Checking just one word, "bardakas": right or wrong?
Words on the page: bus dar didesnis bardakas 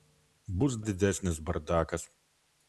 right